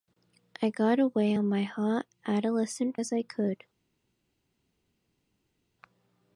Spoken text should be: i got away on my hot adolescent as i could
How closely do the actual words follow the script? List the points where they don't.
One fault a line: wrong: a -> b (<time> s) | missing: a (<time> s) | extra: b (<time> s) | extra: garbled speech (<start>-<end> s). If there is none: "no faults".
no faults